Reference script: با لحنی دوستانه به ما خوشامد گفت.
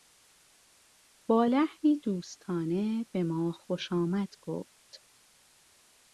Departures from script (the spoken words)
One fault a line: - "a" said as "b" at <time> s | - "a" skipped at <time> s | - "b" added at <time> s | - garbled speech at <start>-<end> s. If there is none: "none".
none